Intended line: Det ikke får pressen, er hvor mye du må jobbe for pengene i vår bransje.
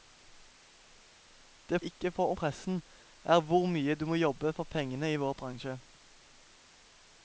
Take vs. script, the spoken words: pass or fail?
pass